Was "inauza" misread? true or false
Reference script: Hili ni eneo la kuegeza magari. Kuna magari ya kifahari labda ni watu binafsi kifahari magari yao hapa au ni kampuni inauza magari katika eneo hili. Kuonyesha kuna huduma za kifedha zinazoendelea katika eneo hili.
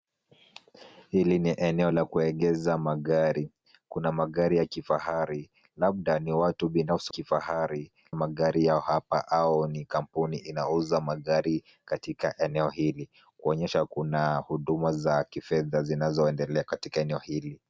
false